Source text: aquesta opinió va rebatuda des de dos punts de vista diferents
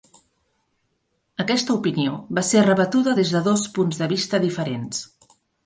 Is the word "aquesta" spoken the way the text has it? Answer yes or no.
yes